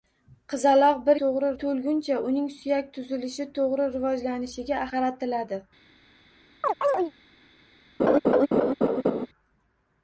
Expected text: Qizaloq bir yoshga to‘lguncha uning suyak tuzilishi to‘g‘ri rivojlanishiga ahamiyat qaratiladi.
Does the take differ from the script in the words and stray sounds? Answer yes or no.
yes